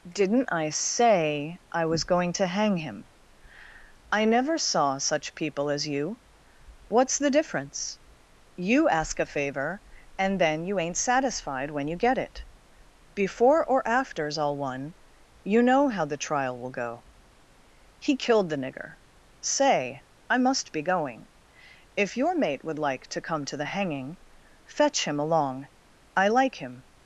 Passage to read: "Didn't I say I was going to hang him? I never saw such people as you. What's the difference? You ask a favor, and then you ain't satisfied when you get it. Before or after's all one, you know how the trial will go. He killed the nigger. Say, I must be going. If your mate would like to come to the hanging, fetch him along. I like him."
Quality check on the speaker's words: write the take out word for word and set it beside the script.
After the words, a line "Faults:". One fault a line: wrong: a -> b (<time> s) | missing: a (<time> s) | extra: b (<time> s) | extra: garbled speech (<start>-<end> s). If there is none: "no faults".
"Didn't I say I was going to hang him? I never saw such people as you. What's the difference? You ask a favor, and then you ain't satisfied when you get it. Before or after's all one, you know how the trial will go. He killed the nigger. Say, I must be going. If your mate would like to come to the hanging, fetch him along. I like him."
Faults:
no faults